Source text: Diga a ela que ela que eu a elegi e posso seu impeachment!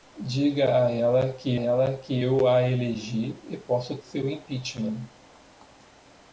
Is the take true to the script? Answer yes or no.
yes